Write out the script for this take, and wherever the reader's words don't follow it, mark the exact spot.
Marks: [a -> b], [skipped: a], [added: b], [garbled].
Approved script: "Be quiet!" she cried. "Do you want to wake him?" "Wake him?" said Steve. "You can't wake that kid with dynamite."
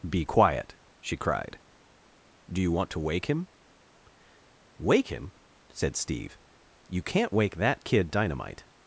"Be quiet!" she cried. "Do you want to wake him?" "Wake him?" said Steve. "You can't wake that kid [skipped: with] dynamite."